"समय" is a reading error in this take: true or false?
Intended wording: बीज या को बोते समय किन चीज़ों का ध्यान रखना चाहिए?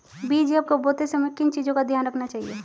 false